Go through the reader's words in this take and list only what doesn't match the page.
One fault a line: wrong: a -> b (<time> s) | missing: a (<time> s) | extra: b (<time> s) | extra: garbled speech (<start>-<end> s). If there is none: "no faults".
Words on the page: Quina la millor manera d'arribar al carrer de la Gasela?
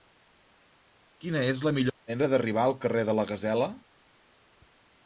extra: és (1.5 s)